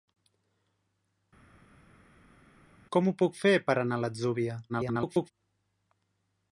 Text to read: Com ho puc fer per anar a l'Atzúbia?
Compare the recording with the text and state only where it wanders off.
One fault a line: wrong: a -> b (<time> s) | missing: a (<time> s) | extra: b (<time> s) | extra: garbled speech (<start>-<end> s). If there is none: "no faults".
extra: garbled speech (4.7-5.3 s)